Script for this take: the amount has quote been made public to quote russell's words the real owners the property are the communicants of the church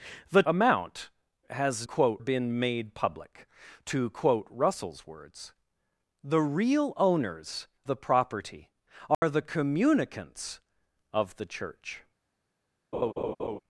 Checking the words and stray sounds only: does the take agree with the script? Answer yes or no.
no